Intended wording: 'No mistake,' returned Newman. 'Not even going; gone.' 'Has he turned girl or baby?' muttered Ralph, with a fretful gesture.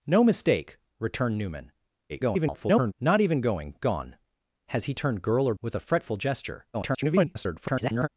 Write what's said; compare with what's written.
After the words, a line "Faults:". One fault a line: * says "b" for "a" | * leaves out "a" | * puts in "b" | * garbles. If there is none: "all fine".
'No mistake,' returned Newman. [garbled] 'Not even going; gone.' 'Has he turned girl or with a fretful gesture. [garbled]
Faults:
* garbles
* leaves out "baby muttered Ralph"
* garbles